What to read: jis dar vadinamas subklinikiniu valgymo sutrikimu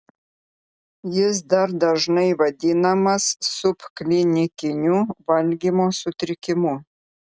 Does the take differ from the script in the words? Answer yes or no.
yes